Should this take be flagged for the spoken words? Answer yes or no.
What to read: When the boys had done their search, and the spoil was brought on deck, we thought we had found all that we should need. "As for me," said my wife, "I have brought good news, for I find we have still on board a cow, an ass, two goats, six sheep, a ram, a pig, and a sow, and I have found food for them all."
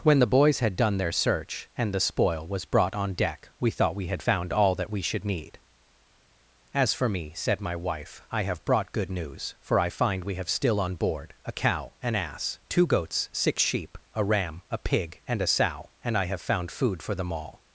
no